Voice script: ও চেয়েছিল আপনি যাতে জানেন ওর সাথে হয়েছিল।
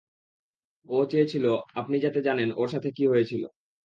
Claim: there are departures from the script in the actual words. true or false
true